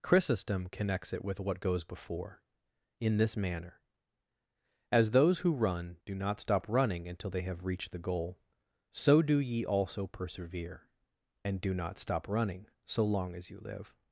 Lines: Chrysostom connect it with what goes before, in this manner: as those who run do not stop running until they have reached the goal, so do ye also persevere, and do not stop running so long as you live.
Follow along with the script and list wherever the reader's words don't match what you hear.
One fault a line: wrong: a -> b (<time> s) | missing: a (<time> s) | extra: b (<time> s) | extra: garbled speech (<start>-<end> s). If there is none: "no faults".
wrong: connect -> connects (0.7 s)